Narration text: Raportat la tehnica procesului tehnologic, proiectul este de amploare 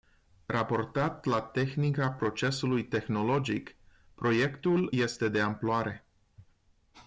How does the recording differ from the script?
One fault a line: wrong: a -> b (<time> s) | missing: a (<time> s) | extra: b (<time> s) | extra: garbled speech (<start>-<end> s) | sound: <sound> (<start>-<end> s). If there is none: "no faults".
no faults